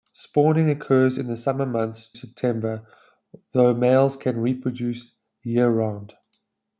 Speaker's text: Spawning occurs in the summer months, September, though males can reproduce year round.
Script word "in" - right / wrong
right